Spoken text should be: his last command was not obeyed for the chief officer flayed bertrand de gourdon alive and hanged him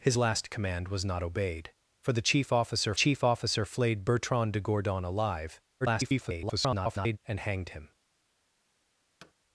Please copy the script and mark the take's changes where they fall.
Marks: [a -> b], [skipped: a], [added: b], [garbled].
his last command was not obeyed for the chief officer [added: chief officer] flayed bertrand de gourdon alive [garbled] and hanged him